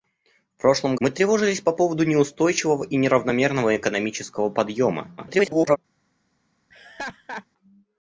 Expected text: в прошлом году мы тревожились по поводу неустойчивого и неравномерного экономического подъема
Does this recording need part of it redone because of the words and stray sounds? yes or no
yes